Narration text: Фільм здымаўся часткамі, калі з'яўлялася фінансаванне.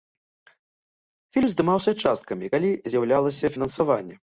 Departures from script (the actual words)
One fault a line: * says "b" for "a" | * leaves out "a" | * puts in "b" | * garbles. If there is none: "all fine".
all fine